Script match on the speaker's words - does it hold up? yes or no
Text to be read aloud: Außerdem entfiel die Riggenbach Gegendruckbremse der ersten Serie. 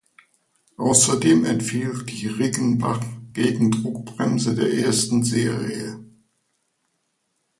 yes